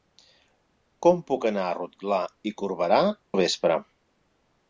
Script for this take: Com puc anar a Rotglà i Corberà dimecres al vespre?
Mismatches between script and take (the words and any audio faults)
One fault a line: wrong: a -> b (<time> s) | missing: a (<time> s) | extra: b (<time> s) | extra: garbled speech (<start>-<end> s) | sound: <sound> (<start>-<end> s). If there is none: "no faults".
missing: dimecres (3.0 s)